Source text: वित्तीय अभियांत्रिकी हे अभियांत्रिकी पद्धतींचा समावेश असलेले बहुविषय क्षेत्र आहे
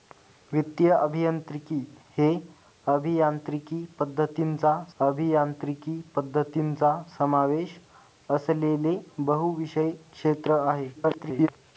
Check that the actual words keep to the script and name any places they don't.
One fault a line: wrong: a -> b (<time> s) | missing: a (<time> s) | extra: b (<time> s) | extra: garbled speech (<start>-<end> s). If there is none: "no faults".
extra: अभियांत्रिकी पद्धतींचा (5.0 s)
extra: garbled speech (11.0-11.5 s)